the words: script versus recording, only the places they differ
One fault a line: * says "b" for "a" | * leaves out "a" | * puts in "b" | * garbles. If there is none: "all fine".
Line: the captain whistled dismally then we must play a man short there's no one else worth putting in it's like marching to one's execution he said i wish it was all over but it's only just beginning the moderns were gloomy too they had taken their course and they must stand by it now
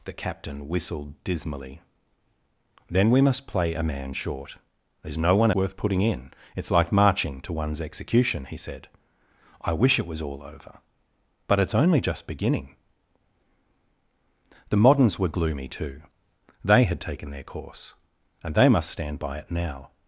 * leaves out "else"